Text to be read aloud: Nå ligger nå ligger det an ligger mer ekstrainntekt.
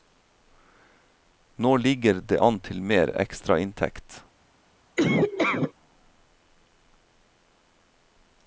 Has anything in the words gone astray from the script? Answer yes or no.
yes